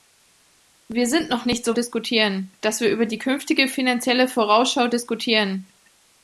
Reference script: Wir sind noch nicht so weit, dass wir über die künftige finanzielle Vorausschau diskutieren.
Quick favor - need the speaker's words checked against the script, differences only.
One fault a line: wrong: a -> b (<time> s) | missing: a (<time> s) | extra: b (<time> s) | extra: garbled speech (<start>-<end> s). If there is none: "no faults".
wrong: weit -> diskutieren (1.7 s)